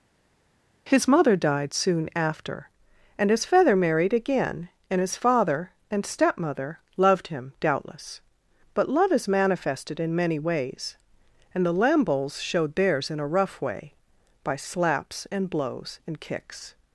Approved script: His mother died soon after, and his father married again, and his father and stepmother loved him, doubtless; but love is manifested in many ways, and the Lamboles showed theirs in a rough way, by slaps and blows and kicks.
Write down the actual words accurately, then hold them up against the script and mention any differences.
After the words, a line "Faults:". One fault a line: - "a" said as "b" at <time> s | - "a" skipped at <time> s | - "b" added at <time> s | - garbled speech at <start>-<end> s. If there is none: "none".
His mother died soon after, and his feather married again, and his father and stepmother loved him, doubtless; but love is manifested in many ways, and the Lamboles showed theirs in a rough way, by slaps and blows and kicks.
Faults:
- "father" said as "feather" at 3.4 s